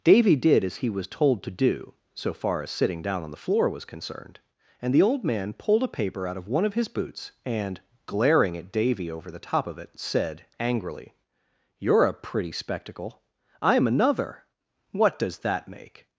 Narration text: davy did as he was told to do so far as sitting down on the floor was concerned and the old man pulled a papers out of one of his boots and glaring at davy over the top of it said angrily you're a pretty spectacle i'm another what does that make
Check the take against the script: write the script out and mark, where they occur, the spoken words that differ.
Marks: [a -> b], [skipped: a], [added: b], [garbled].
davy did as he was told to do so far as sitting down on the floor was concerned and the old man pulled a [papers -> paper] out of one of his boots and glaring at davy over the top of it said angrily you're a pretty spectacle i'm another what does that make